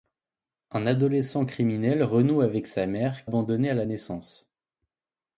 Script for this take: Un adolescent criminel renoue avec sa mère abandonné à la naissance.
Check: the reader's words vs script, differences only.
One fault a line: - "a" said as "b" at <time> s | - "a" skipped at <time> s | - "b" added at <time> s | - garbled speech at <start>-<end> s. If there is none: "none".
none